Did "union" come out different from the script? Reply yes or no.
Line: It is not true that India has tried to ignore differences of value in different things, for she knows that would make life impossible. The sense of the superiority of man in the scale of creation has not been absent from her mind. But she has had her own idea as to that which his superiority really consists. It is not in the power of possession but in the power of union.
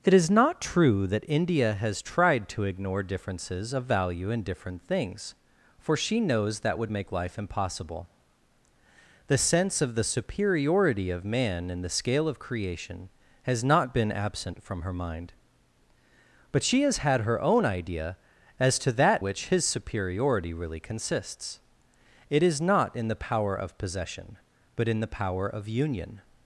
no